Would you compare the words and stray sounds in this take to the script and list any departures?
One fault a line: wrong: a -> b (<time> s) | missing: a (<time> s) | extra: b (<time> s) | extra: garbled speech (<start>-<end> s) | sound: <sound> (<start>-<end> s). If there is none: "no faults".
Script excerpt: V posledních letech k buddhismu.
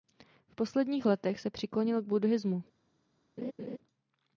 extra: se přiklonil (1.4 s)
sound: laugh (3.4-3.8 s)